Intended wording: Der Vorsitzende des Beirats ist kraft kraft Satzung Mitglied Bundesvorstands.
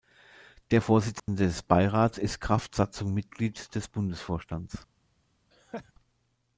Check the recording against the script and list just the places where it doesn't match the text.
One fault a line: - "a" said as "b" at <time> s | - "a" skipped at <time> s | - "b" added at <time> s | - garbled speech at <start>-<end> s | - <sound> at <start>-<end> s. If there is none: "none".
- dropout at 1.2-1.3 s
- "kraft" skipped at 2.8 s
- "des" added at 3.7 s
- laugh at 5.5-5.9 s